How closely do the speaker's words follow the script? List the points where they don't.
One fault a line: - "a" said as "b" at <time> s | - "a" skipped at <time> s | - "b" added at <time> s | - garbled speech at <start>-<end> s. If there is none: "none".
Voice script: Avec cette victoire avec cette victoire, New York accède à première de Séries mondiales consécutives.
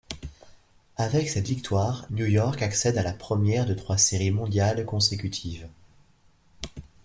- "avec cette victoire" skipped at 2.1 s
- "la" added at 3.0 s
- "trois" added at 3.7 s